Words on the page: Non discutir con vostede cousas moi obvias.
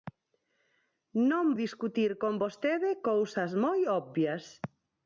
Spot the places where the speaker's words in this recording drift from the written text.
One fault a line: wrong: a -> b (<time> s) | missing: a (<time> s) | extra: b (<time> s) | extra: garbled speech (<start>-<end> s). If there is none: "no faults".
no faults